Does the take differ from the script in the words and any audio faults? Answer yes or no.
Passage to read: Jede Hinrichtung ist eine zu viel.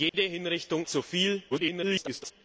yes